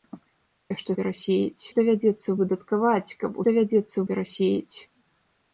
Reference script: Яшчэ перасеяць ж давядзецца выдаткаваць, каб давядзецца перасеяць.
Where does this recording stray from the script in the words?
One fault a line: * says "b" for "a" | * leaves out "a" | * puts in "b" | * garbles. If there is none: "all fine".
all fine